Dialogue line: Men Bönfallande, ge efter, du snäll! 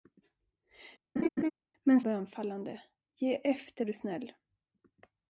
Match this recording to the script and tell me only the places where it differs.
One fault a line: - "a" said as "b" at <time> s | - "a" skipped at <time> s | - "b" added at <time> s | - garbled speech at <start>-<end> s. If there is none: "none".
none